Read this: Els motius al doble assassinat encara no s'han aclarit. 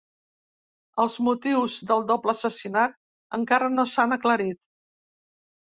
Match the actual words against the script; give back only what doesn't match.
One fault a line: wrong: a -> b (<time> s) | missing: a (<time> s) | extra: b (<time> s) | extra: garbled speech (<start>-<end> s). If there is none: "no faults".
wrong: al -> del (1.9 s)